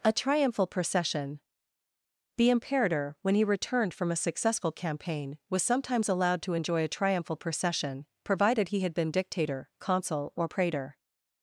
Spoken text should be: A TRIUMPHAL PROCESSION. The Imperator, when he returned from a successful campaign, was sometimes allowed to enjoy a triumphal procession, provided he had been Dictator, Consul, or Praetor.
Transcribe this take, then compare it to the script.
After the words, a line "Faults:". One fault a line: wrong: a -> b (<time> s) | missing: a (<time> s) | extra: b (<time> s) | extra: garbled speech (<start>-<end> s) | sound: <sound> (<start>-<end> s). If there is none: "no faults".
A TRIUMPHAL PROCESSION. The Imperator, when he returned from a successful campaign, was sometimes allowed to enjoy a triumphal procession, provided he had been Dictator, Consul, or Praetor.
Faults:
no faults